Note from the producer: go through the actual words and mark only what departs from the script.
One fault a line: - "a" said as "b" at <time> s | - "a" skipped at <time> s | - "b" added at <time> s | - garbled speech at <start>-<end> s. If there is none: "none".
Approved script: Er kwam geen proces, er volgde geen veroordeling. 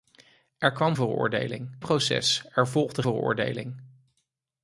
- "geen" said as "veroordeling" at 0.9 s
- "geen" skipped at 3.0 s